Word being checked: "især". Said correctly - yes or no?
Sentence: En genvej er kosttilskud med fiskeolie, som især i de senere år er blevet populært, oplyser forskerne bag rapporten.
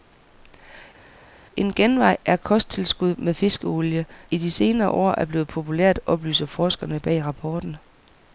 no